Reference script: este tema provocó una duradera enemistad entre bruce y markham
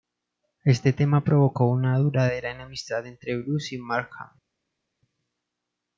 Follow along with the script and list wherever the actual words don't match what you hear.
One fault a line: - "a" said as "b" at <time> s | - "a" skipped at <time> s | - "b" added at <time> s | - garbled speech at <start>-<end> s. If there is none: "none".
none